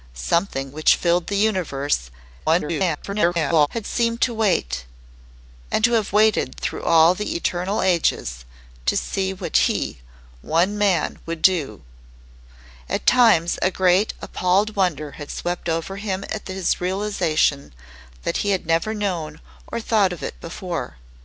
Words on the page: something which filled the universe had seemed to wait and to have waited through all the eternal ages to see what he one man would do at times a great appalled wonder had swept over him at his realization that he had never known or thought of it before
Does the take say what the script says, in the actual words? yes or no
no